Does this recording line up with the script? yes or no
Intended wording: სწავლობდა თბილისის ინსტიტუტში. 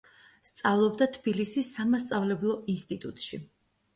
no